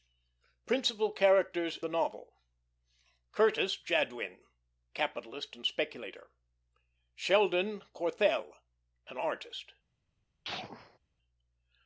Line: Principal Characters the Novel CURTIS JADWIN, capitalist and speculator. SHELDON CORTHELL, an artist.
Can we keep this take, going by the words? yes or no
yes